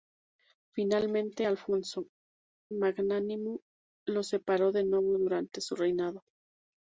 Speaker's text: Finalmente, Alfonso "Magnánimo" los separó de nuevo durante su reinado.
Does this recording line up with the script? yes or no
yes